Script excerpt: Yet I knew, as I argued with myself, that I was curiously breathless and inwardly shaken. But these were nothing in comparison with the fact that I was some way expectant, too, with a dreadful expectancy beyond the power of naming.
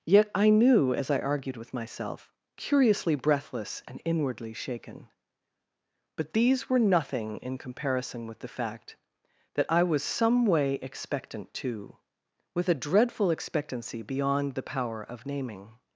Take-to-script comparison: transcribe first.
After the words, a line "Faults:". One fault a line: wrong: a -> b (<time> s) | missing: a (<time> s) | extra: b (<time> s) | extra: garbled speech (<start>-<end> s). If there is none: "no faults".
Yet I knew, as I argued with myself, curiously breathless and inwardly shaken. But these were nothing in comparison with the fact that I was some way expectant, too, with a dreadful expectancy beyond the power of naming.
Faults:
missing: that I was (2.3 s)